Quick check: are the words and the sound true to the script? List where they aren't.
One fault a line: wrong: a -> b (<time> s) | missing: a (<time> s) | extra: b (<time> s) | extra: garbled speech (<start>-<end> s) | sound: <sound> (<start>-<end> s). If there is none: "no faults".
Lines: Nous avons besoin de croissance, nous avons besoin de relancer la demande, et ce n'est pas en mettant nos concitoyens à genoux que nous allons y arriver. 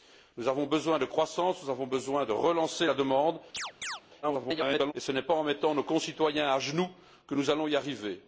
sound: chirp (3.5-4.0 s)
extra: garbled speech (4.2-4.9 s)